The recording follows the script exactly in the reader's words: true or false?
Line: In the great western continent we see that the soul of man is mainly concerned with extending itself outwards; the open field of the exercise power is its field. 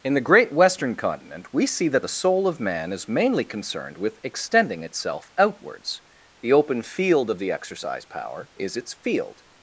true